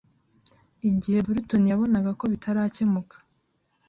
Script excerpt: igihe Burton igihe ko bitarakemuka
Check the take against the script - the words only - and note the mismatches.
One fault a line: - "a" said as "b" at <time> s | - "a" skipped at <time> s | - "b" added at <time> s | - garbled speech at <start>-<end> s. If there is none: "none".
- "igihe" said as "yabonaga" at 1.7 s